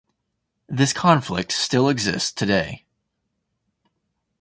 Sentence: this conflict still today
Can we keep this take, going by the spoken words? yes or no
no